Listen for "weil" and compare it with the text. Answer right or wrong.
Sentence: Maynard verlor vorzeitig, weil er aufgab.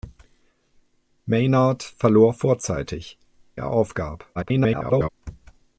wrong